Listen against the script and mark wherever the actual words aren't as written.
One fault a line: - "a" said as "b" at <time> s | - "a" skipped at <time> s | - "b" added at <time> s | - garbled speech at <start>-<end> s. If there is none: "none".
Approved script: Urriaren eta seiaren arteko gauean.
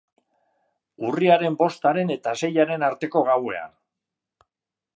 - "bostaren" added at 1.6 s